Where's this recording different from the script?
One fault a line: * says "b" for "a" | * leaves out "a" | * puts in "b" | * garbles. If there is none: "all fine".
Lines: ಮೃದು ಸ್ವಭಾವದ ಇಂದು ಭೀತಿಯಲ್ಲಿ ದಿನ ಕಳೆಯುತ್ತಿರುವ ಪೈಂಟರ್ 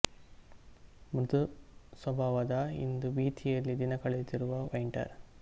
all fine